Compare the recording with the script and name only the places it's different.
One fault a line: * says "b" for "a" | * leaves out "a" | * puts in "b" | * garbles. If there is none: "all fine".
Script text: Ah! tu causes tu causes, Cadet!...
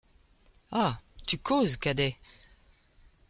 * leaves out "tu causes"